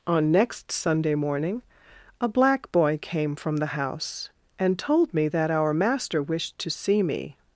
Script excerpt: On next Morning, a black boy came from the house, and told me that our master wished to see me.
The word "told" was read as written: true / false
true